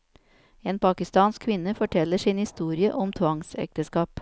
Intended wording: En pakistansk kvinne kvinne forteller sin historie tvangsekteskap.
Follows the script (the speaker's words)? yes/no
no